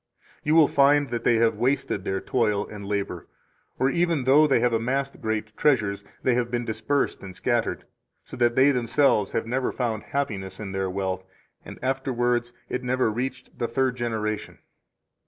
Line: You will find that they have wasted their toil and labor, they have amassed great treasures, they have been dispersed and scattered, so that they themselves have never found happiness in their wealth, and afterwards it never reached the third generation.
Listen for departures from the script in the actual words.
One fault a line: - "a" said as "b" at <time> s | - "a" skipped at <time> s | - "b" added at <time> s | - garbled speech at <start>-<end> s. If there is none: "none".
- "or even though" added at 3.8 s